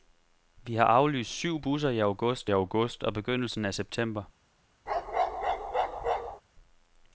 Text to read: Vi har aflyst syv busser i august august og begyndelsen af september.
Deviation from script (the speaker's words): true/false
false